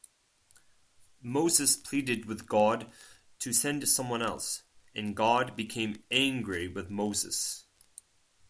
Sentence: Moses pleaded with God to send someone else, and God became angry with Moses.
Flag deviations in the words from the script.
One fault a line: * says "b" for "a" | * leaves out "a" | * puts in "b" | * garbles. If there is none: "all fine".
all fine